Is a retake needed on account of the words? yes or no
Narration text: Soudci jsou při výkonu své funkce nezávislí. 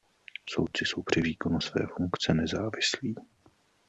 no